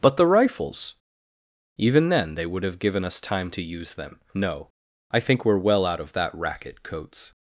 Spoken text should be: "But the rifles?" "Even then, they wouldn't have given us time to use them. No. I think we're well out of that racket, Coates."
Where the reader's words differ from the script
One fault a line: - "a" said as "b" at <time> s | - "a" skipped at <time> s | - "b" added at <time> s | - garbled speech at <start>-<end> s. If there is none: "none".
- "wouldn't" said as "would" at 2.5 s